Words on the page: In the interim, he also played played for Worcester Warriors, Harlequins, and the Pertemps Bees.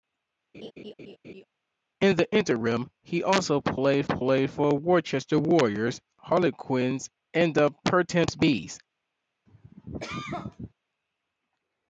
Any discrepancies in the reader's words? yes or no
no